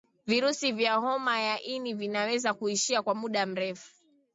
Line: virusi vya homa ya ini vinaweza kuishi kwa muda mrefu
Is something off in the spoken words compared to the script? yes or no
no